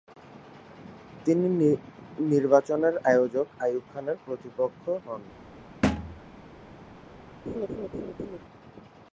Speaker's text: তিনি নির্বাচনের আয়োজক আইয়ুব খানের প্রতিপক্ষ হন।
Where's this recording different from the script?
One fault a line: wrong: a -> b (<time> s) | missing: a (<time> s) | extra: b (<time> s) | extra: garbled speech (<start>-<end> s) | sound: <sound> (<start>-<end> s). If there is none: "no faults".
sound: thud (5.8-6.2 s)
sound: laugh (7.5-8.4 s)